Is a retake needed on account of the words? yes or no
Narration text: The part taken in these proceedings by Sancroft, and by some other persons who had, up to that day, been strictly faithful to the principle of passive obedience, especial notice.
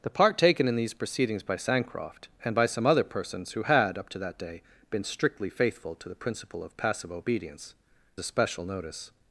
no